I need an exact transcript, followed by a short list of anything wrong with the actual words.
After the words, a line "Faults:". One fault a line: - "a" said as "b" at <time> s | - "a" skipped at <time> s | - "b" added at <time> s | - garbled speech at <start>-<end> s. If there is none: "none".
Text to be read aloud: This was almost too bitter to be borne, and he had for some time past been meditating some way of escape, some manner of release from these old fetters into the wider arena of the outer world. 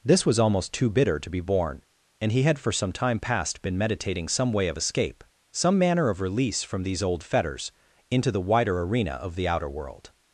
This was almost too bitter to be borne, and he had for some time past been meditating some way of escape, some manner of release from these old fetters into the wider arena of the outer world.
Faults:
none